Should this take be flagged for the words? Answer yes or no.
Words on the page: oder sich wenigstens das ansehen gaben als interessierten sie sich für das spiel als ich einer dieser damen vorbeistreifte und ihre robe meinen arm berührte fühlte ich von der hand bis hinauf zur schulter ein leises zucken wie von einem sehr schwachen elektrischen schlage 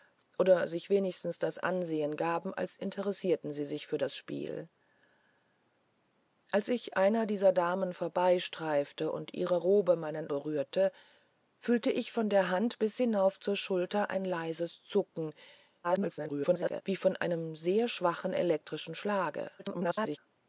yes